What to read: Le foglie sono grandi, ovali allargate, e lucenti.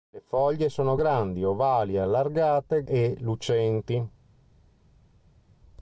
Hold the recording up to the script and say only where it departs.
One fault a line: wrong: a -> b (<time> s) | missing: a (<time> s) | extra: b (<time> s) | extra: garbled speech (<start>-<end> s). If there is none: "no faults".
no faults